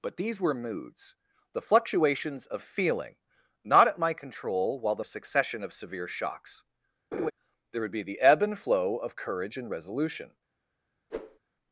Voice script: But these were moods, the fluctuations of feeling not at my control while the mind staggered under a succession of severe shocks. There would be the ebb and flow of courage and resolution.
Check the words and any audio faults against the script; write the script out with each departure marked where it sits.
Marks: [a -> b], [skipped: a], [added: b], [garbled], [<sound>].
But these were moods, the fluctuations of feeling not at my control while the [skipped: mind staggered under] a succession of severe shocks. [laugh] There would be the ebb and flow of courage and resolution. [whoosh]